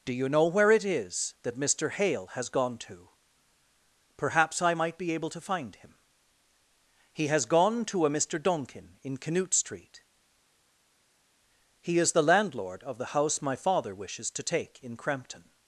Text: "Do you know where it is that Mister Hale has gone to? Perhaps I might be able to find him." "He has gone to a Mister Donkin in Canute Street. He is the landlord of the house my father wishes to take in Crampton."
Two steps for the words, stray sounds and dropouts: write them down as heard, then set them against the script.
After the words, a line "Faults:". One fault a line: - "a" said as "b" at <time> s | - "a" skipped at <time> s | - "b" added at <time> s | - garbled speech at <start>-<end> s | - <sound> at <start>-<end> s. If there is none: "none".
"Do you know where it is that Mister Hale has gone to? Perhaps I might be able to find him." "He has gone to a Mister Donkin in Canute Street. He is the landlord of the house my father wishes to take in Crampton."
Faults:
none